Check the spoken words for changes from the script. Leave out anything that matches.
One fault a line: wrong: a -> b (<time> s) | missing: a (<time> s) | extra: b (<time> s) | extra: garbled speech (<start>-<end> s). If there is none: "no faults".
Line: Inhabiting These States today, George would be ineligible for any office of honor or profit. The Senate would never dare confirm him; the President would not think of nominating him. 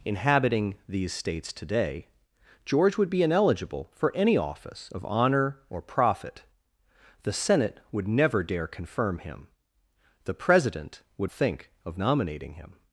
missing: not (11.3 s)